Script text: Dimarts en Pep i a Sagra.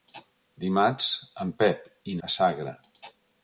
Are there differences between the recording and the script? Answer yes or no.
no